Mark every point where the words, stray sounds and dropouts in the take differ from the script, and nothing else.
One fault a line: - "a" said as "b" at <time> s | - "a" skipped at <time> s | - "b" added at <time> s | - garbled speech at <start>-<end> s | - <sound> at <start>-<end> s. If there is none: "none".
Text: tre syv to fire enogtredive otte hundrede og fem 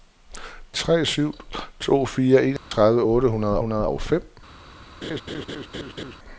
- dropout at 2.6-2.7 s
- "hundrede" added at 3.6 s
- laugh at 5.0-6.2 s